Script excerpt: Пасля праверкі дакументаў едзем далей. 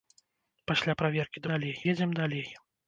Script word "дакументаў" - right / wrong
wrong